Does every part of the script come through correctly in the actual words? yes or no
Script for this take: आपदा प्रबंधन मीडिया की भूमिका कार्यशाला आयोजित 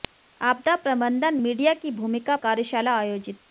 yes